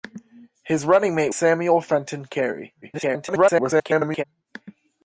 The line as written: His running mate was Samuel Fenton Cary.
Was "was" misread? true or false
true